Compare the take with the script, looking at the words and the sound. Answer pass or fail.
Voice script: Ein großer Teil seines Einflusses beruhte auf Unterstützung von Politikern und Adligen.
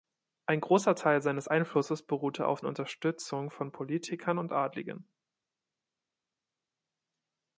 pass